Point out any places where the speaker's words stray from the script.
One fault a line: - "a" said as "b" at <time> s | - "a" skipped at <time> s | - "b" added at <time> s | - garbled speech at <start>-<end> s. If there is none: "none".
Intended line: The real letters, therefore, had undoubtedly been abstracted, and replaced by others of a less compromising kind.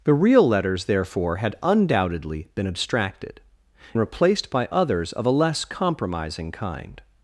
- "and" skipped at 3.4 s